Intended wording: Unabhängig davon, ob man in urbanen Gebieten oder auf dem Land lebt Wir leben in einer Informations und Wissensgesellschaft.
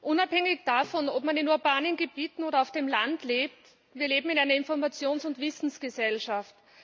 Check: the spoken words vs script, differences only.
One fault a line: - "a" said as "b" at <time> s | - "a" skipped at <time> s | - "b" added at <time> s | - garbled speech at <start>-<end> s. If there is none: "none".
none